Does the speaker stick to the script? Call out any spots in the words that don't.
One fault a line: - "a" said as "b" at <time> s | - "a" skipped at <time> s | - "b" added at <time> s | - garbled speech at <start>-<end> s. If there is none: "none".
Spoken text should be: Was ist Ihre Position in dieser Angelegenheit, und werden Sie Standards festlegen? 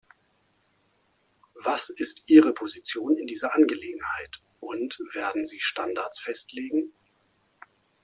none